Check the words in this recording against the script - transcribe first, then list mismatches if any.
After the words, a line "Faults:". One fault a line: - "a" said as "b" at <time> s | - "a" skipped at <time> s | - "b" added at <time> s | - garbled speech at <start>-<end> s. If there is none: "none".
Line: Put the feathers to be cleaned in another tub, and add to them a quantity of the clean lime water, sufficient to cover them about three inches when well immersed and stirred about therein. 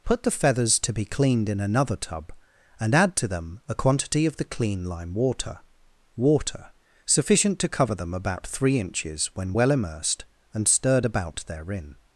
Put the feathers to be cleaned in another tub, and add to them a quantity of the clean lime water water, sufficient to cover them about three inches when well immersed and stirred about therein.
Faults:
- "water" added at 6.2 s